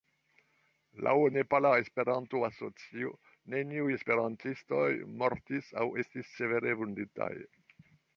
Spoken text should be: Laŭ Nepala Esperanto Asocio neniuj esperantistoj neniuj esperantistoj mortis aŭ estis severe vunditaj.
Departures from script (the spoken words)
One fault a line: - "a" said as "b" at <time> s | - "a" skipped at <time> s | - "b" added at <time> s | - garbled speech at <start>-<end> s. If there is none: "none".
- "neniuj esperantistoj" skipped at 4.9 s